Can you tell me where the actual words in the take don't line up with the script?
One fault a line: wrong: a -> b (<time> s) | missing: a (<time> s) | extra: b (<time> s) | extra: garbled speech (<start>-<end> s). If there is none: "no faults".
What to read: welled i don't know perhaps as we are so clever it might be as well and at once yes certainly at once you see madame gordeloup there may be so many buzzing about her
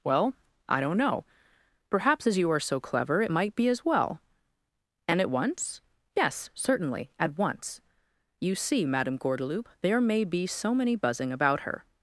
wrong: welled -> well (0.0 s)
wrong: we -> you (2.4 s)